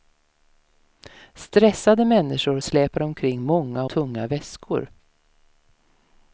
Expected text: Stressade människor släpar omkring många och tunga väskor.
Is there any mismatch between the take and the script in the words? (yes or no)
yes